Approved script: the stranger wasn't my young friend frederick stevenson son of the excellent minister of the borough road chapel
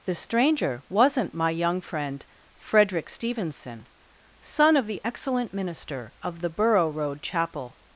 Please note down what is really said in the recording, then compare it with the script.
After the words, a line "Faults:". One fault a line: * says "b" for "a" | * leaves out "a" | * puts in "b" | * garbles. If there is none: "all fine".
the stranger wasn't my young friend frederick stevenson son of the excellent minister of the borough road chapel
Faults:
all fine